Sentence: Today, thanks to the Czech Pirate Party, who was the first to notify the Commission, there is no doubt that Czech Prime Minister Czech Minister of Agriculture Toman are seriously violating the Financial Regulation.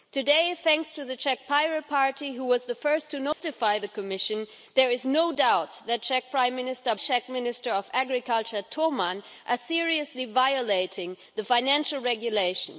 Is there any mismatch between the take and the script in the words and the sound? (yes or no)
yes